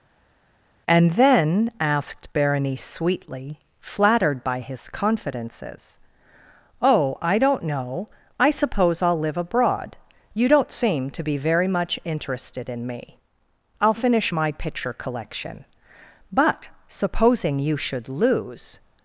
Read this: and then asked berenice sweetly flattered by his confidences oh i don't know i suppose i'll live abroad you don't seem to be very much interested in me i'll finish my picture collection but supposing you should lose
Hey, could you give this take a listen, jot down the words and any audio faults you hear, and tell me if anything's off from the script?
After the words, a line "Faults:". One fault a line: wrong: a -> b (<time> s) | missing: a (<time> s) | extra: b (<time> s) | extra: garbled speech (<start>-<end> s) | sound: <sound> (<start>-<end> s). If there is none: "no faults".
and then asked berenice sweetly flattered by his confidences oh i don't know i suppose i'll live abroad you don't seem to be very much interested in me i'll finish my picture collection but supposing you should lose
Faults:
no faults